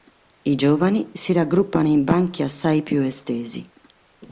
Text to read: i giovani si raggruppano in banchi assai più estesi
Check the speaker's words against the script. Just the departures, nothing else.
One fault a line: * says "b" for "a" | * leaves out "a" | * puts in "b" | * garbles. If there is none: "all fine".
all fine